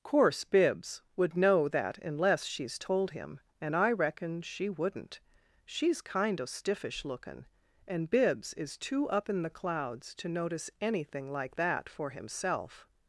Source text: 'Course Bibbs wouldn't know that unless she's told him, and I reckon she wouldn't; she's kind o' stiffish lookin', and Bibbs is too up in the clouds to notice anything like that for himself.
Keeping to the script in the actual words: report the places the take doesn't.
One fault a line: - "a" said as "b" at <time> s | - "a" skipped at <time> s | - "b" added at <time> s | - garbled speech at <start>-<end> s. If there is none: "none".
- "wouldn't" said as "would" at 1.1 s